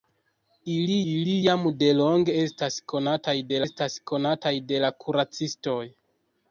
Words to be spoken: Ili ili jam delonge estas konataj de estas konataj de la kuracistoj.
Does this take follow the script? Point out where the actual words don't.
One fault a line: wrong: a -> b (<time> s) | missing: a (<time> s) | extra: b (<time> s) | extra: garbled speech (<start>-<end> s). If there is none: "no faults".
no faults